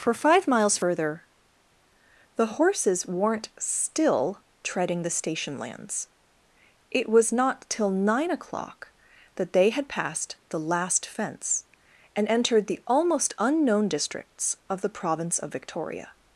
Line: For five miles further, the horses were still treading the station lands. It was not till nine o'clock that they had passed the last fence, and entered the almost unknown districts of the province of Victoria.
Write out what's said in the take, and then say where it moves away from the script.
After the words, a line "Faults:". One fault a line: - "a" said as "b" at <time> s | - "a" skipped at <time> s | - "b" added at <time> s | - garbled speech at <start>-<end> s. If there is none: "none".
For five miles further, the horses weren't still treading the station lands. It was not till nine o'clock that they had passed the last fence, and entered the almost unknown districts of the province of Victoria.
Faults:
- "were" said as "weren't" at 3.0 s